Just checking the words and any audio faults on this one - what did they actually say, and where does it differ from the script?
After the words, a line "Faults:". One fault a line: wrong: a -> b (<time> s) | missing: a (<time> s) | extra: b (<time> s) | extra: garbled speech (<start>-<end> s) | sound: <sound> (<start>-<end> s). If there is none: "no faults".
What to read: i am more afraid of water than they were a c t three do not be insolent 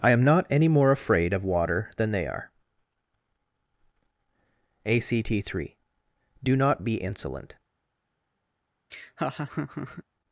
i am not any more afraid of water than they are a c t three do not be insolent
Faults:
extra: not any (0.2 s)
wrong: were -> are (2.2 s)
sound: laugh (8.9-10.0 s)